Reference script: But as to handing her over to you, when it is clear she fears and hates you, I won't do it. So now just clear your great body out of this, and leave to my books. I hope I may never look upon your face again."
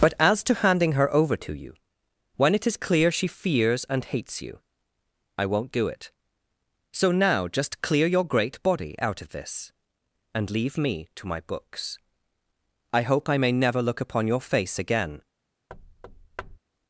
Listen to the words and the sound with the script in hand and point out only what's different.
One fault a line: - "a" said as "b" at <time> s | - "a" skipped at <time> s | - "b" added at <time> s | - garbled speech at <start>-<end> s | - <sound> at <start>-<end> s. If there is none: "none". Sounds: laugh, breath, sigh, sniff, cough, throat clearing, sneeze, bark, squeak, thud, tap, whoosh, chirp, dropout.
- "me" added at 10.8 s
- thud at 15.7-16.6 s